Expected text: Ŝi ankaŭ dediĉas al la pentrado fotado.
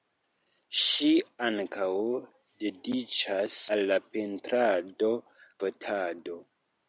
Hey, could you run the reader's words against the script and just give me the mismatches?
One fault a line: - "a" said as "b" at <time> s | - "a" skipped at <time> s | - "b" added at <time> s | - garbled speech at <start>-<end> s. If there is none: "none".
none